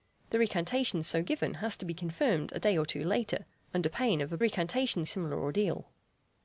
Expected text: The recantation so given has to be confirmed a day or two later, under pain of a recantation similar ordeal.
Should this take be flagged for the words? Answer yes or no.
no